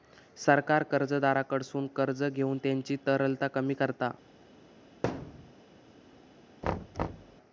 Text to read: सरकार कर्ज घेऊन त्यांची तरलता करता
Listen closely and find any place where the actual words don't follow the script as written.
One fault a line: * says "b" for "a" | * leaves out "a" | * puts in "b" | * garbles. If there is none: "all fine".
* puts in "कर्जदाराकडसून"
* puts in "कमी"